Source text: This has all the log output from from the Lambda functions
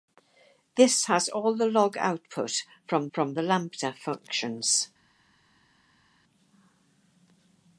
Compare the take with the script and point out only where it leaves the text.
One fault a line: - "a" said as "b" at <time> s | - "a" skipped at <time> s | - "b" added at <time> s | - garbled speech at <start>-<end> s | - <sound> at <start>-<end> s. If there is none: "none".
none